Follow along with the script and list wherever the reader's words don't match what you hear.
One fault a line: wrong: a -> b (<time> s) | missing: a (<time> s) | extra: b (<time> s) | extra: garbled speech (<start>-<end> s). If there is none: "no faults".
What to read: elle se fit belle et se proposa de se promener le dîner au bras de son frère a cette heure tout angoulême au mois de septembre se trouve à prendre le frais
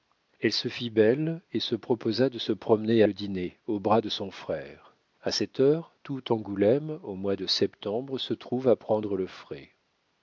no faults